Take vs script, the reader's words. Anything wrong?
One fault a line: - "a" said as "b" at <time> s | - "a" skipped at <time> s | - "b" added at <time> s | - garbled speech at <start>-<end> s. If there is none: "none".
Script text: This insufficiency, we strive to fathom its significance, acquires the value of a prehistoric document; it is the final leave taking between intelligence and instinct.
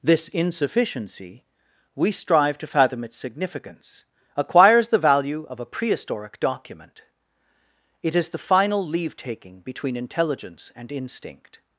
none